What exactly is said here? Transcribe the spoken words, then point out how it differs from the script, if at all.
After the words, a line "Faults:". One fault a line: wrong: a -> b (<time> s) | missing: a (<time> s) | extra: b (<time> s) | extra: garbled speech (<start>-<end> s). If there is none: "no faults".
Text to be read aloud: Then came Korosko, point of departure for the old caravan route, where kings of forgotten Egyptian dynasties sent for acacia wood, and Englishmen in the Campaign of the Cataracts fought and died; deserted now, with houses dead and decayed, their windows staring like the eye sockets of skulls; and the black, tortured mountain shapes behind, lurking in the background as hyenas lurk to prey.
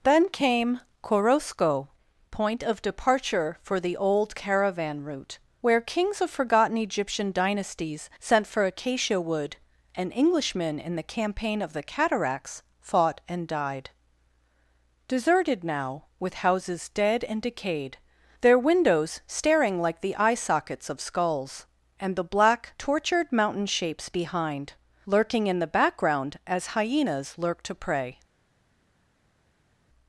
Then came Korosko, point of departure for the old caravan route, where kings of forgotten Egyptian dynasties sent for acacia wood, and Englishmen in the Campaign of the Cataracts fought and died; deserted now, with houses dead and decayed, their windows staring like the eye sockets of skulls; and the black, tortured mountain shapes behind, lurking in the background as hyenas lurk to prey.
Faults:
no faults